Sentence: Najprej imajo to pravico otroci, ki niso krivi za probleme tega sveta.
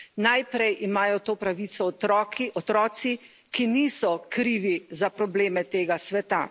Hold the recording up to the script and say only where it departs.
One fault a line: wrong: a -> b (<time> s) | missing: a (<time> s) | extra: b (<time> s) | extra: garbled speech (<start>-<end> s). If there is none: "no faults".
no faults